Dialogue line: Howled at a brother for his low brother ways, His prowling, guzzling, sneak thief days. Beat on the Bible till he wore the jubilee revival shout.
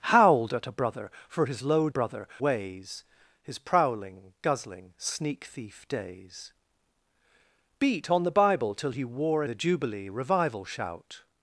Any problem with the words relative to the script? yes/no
no